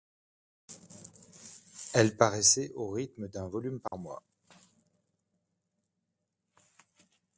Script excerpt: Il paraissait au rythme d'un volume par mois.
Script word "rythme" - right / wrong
right